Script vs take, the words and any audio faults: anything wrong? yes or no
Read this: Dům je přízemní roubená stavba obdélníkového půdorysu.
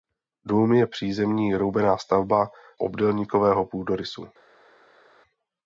no